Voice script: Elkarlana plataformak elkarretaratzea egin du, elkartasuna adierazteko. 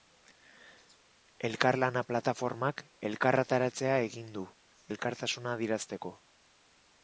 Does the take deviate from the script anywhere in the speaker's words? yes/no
no